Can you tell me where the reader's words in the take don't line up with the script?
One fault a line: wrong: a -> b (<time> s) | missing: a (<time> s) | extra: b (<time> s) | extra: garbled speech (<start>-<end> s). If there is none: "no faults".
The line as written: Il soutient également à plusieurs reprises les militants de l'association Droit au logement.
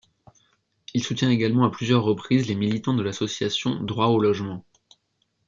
no faults